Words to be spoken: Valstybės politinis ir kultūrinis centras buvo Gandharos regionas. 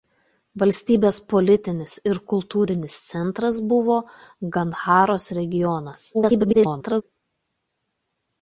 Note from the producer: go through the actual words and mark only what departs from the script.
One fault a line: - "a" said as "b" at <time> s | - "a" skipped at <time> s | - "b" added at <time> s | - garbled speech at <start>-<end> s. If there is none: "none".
- garbled speech at 6.1-7.0 s